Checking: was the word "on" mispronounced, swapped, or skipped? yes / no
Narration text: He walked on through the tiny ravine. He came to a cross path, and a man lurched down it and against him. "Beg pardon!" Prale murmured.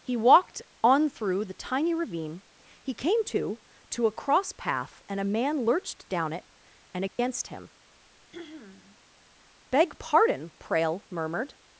no